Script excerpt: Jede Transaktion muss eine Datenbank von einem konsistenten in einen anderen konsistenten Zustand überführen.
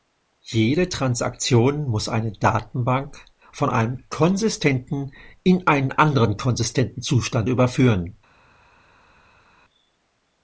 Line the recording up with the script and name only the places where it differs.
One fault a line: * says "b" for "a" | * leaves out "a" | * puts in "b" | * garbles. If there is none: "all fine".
all fine